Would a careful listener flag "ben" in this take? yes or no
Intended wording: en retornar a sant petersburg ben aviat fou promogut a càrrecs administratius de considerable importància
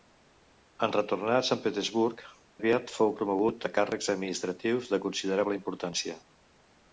yes